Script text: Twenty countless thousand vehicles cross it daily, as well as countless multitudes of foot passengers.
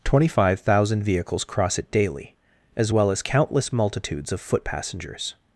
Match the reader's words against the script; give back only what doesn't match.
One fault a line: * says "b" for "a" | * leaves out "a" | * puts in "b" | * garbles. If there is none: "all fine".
* says "five" for "countless"